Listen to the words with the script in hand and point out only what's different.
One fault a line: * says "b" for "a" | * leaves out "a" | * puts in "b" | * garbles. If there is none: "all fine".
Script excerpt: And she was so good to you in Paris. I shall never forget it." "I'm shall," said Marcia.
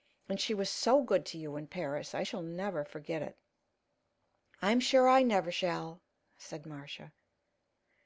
* puts in "sure I never"